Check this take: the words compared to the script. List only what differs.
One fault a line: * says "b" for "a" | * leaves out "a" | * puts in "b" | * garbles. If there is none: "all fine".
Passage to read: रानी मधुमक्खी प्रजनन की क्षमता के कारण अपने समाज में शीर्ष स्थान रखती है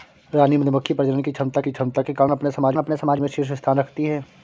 * puts in "की क्षमता"
* puts in "अपने समाज"